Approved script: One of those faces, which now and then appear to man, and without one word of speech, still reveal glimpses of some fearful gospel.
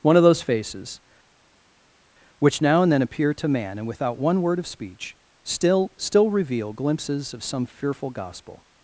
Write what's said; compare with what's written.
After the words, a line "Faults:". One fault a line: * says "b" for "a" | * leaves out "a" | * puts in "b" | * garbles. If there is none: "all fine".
One of those faces, which now and then appear to man, and without one word of speech, still still reveal glimpses of some fearful gospel.
Faults:
* puts in "still"